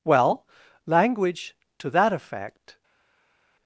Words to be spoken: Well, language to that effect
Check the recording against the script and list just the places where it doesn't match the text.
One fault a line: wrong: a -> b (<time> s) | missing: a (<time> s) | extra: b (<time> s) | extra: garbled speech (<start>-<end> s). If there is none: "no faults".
no faults